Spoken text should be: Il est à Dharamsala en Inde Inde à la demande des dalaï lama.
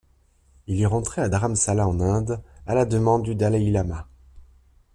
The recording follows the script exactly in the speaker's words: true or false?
false